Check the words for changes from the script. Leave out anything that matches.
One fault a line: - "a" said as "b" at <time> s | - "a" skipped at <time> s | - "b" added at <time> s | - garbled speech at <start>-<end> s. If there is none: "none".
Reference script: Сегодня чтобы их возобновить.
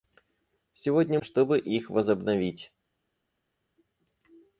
none